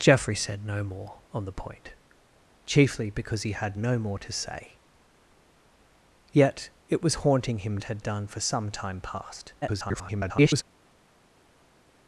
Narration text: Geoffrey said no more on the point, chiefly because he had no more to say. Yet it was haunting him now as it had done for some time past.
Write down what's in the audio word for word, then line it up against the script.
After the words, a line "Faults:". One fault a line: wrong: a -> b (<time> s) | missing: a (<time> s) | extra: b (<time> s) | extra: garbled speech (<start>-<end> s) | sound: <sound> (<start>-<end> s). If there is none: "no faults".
Geoffrey said no more on the point, chiefly because he had no more to say. Yet it was haunting him it had done for some time past. [garbled]
Faults:
missing: now as (7.8 s)
extra: garbled speech (9.6-10.6 s)